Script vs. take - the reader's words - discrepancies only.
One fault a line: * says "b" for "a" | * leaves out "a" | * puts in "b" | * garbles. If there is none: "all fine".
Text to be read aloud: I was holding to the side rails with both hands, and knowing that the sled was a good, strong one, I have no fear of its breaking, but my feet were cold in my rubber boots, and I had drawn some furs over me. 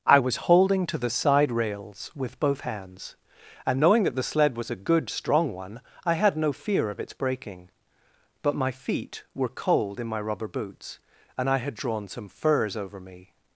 * says "had" for "have"